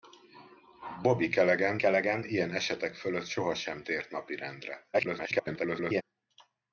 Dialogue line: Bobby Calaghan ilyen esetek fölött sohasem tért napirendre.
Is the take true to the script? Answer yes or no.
no